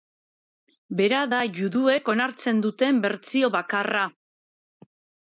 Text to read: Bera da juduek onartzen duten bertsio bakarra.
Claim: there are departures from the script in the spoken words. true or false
false